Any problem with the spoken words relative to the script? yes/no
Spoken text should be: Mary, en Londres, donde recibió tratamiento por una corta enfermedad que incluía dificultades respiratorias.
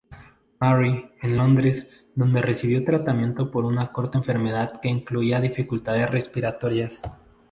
no